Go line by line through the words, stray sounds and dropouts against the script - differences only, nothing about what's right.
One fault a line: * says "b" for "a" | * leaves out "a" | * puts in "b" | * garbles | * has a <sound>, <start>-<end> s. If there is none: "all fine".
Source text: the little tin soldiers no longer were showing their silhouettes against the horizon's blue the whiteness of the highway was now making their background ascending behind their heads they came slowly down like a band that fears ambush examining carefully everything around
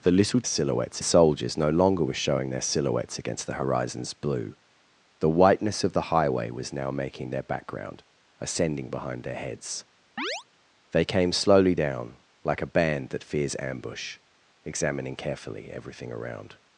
* says "silhouettes" for "tin"
* has a chirp, 10.2-10.4 s